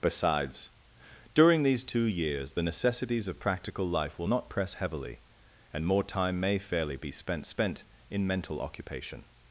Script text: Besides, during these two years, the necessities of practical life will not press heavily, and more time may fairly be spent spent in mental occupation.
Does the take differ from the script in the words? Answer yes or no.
no